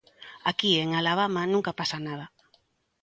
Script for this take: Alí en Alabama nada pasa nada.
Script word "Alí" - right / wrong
wrong